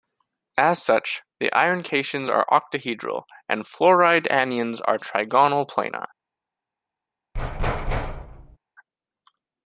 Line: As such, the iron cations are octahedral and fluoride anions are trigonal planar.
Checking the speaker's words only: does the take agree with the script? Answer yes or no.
yes